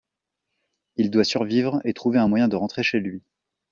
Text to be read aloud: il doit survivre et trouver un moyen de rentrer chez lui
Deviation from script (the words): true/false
false